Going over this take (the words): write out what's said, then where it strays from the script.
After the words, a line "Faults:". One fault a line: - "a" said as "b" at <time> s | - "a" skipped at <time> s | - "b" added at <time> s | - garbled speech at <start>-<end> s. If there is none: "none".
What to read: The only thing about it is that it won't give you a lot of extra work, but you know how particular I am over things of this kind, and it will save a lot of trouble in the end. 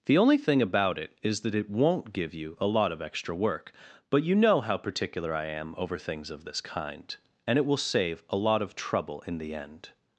The only thing about it is that it won't give you a lot of extra work, but you know how particular I am over things of this kind, and it will save a lot of trouble in the end.
Faults:
none